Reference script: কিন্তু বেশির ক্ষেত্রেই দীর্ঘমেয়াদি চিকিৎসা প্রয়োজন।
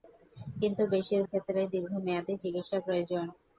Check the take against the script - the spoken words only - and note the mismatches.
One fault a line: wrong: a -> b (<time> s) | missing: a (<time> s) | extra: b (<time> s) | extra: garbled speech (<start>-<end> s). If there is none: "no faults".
no faults